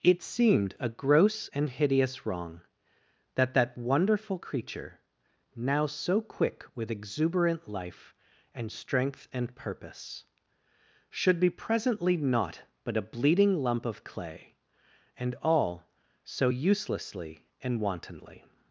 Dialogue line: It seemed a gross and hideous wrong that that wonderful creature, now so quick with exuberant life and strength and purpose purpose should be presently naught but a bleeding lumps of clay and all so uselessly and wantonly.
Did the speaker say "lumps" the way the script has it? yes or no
no